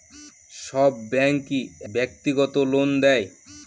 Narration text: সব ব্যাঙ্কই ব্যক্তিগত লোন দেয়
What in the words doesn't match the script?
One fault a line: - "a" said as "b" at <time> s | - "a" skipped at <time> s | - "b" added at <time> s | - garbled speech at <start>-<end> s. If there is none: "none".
none